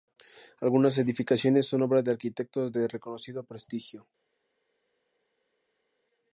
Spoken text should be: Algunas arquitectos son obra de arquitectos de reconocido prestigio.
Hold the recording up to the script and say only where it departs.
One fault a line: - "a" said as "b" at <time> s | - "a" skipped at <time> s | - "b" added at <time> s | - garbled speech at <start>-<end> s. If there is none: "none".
- "arquitectos" said as "edificaciones" at 1.0 s